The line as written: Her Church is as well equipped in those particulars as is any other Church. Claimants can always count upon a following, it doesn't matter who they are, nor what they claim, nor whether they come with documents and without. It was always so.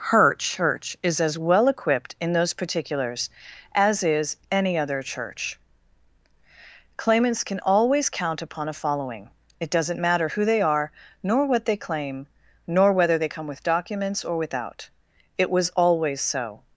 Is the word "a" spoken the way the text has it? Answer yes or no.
yes